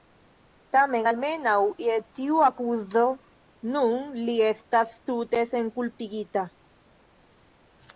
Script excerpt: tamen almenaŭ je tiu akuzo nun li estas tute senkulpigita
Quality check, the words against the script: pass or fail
pass